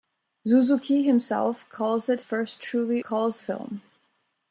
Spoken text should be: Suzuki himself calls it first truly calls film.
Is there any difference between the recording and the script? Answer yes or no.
no